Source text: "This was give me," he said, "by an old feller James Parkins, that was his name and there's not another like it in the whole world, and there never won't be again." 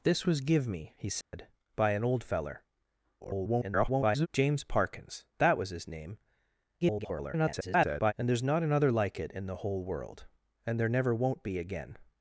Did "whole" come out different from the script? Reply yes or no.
no